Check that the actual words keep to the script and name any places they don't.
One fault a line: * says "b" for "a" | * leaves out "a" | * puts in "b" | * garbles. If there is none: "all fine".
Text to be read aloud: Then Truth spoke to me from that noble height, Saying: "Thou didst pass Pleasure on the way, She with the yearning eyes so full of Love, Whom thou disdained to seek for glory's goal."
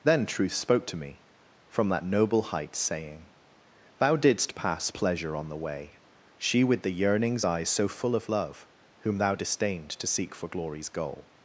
* says "yearnings" for "yearning"